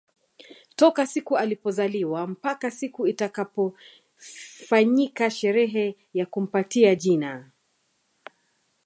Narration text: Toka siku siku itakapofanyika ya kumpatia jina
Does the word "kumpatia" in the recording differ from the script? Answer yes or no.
no